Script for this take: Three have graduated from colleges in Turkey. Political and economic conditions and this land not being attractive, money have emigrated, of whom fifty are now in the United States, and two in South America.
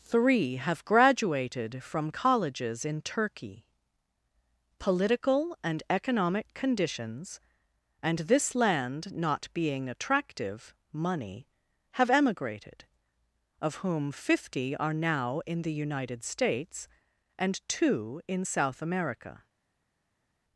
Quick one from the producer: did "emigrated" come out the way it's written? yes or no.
yes